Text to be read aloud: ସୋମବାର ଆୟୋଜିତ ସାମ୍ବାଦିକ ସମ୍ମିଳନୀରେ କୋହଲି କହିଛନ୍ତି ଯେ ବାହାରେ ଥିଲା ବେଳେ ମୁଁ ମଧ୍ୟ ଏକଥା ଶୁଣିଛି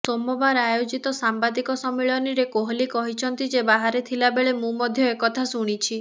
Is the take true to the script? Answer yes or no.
yes